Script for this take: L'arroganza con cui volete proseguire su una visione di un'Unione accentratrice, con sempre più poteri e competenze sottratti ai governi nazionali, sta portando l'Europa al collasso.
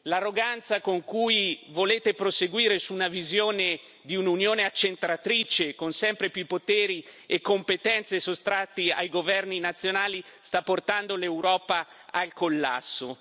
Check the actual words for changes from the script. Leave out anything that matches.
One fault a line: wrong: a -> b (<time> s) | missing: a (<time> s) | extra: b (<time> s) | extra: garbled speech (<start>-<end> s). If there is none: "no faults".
no faults